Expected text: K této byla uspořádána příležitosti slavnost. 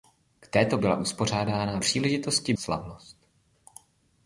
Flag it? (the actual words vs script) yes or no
no